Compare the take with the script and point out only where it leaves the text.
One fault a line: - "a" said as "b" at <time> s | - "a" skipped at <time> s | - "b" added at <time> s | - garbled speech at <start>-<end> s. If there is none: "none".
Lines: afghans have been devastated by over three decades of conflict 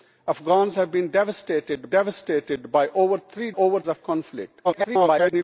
- "devastated" added at 1.9 s
- "decades" said as "over" at 3.5 s
- garbled speech at 4.6-5.4 s